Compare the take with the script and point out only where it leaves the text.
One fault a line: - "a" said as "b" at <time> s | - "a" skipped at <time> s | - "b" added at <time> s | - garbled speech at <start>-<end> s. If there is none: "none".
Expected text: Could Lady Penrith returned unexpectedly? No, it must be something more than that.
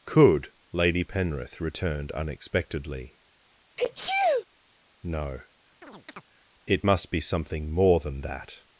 none